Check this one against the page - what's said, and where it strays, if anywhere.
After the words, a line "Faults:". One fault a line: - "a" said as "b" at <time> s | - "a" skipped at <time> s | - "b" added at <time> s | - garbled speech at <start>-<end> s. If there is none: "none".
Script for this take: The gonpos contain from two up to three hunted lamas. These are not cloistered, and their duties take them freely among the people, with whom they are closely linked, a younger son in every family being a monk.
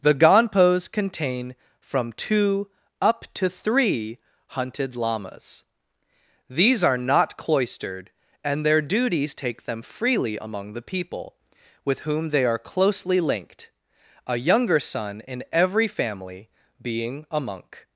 The gonpos contain from two up to three hunted lamas. These are not cloistered, and their duties take them freely among the people, with whom they are closely linked, a younger son in every family being a monk.
Faults:
none